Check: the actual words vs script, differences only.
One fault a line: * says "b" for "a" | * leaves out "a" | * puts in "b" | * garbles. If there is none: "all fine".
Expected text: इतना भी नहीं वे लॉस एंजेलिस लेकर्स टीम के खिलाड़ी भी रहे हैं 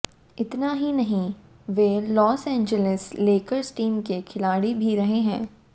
* says "ही" for "भी"